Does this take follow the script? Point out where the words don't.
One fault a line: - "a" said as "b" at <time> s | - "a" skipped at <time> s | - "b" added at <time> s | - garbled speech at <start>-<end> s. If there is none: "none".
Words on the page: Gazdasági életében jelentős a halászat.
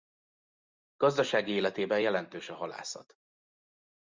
none